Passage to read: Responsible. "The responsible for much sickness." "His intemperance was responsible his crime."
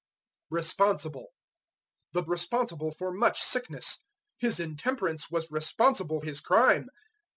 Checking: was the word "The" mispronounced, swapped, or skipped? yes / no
no